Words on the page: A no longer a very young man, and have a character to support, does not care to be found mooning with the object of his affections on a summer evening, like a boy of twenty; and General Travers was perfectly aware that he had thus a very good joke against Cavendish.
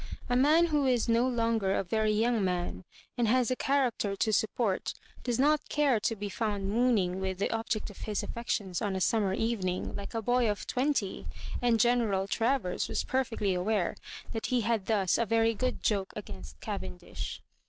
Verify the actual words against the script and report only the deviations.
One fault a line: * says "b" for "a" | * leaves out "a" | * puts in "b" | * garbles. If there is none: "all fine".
* puts in "man who is"
* says "has" for "have"